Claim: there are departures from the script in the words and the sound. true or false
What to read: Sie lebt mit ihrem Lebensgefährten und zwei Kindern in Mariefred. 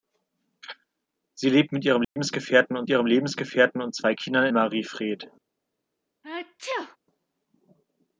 true